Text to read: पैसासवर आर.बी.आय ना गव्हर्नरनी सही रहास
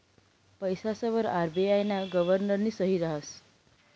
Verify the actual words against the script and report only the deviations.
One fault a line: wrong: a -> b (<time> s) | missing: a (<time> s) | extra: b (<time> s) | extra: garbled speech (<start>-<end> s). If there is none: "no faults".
no faults